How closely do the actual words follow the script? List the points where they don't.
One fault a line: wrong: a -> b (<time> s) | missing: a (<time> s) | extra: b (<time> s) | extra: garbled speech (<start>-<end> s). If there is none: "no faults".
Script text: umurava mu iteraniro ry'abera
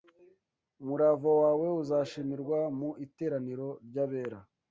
extra: wawe uzashimirwa (1.4 s)